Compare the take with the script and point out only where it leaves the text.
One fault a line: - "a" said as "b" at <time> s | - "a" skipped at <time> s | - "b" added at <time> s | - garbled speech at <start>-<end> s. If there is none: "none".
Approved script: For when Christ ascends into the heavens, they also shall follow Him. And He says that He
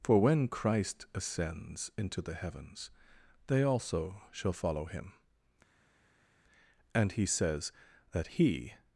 none